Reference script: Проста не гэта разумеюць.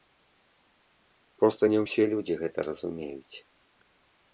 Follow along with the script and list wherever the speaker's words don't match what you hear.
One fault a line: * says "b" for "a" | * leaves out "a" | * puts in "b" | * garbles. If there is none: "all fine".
* puts in "ўсе людзі"